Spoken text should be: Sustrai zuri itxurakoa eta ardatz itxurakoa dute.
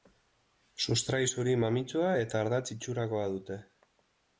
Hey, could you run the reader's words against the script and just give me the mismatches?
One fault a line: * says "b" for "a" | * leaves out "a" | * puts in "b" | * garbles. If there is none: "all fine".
* says "mamitsua" for "itxurakoa"